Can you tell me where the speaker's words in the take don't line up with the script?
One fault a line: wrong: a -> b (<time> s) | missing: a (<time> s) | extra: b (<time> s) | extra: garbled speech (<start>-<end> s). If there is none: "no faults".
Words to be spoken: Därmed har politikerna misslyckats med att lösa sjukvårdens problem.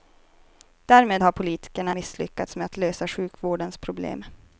no faults